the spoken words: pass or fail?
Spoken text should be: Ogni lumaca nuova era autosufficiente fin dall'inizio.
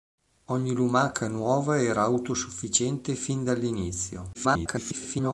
fail